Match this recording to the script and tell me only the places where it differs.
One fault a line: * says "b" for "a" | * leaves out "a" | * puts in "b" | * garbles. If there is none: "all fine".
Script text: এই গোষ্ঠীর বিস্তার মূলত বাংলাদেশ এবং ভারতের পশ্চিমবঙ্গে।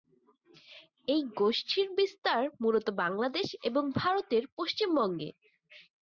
all fine